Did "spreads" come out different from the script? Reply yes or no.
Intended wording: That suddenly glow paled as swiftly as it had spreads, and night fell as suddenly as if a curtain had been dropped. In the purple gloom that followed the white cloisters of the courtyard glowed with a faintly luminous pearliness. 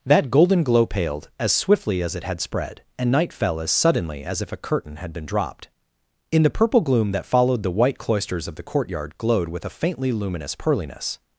yes